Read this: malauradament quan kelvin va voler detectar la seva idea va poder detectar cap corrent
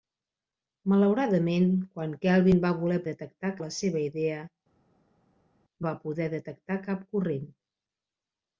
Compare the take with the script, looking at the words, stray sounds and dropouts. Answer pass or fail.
pass